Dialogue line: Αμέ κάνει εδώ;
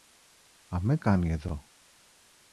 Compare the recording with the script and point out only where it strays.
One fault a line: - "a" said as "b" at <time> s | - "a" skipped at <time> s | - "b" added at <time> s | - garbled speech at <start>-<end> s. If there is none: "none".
none